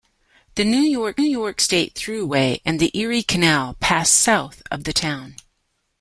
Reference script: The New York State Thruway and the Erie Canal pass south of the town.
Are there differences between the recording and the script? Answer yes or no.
yes